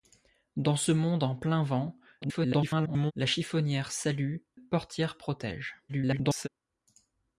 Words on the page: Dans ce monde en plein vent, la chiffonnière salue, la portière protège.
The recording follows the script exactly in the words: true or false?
false